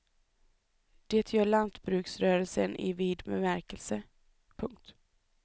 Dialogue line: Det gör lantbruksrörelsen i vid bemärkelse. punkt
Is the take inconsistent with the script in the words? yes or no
no